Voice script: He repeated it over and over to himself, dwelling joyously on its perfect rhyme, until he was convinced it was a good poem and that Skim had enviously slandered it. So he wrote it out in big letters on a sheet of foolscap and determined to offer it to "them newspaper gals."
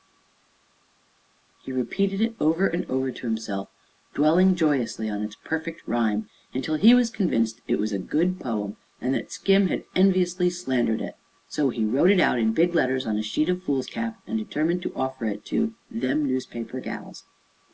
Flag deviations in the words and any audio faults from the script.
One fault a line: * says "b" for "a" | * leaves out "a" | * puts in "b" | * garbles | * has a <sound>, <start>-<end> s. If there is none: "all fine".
all fine